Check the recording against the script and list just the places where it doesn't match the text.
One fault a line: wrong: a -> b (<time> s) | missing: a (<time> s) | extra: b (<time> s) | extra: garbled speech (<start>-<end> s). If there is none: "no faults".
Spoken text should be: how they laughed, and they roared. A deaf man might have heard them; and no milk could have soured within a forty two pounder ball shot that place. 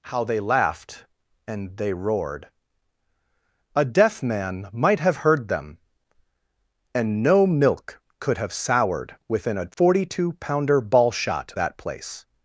no faults